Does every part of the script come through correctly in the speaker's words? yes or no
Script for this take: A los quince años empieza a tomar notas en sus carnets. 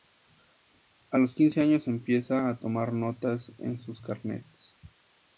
yes